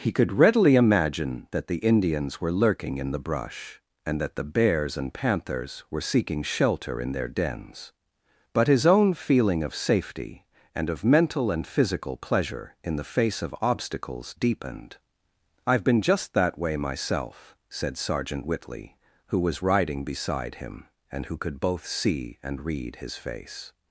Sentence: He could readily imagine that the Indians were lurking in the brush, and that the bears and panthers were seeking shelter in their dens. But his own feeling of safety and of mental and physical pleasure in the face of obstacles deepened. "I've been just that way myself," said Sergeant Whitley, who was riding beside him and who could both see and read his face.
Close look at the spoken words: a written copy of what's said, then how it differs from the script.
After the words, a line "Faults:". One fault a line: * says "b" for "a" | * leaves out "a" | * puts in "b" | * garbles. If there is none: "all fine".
He could readily imagine that the Indians were lurking in the brush, and that the bears and panthers were seeking shelter in their dens. But his own feeling of safety and of mental and physical pleasure in the face of obstacles deepened. "I've been just that way myself," said Sergeant Whitley, who was riding beside him and who could both see and read his face.
Faults:
all fine